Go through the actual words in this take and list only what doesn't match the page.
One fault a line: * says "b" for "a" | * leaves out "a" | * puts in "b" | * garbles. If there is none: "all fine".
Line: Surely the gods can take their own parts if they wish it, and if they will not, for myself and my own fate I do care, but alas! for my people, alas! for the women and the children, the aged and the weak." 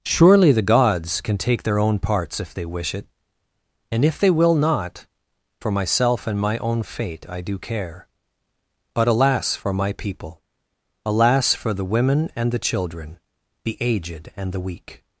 all fine